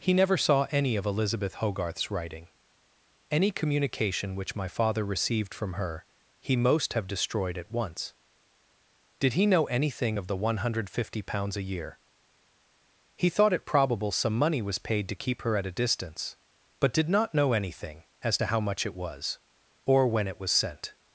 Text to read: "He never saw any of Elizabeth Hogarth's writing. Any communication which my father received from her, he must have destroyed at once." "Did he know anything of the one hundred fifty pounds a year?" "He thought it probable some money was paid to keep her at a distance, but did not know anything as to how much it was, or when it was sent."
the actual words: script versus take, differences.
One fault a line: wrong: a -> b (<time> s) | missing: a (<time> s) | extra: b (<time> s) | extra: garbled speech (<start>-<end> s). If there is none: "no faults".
wrong: must -> most (6.5 s)